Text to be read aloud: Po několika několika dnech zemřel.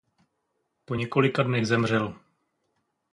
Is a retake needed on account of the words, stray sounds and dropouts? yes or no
yes